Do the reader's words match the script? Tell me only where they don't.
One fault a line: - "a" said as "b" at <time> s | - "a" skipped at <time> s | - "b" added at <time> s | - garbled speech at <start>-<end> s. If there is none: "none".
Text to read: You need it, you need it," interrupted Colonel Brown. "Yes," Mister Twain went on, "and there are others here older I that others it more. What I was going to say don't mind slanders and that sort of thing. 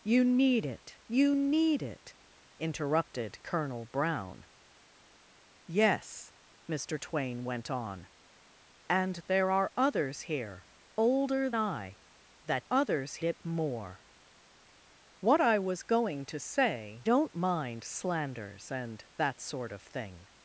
none